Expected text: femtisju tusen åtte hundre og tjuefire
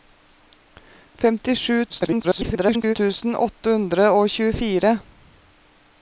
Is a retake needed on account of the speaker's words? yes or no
yes